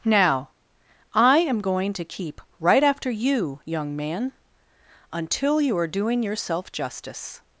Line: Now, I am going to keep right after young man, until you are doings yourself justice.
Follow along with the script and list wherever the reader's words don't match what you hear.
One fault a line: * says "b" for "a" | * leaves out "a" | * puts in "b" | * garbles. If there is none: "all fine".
* puts in "you"
* says "doing" for "doings"